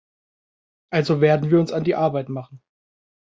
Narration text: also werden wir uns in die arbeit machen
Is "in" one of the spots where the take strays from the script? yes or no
yes